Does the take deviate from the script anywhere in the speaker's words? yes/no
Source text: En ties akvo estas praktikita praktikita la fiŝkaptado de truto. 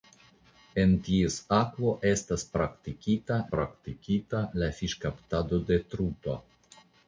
no